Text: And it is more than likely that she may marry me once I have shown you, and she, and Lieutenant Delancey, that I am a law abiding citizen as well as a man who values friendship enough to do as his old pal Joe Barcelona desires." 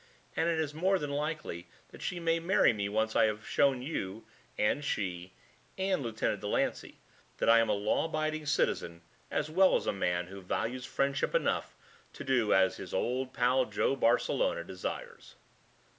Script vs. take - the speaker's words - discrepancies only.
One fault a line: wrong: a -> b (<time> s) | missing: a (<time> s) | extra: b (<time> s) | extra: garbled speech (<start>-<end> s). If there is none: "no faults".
no faults